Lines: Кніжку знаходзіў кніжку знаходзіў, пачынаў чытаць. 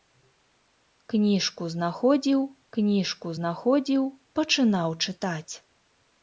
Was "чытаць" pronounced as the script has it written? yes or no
yes